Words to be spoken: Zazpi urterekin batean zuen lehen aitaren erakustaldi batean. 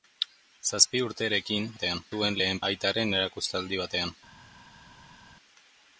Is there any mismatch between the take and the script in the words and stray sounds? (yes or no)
no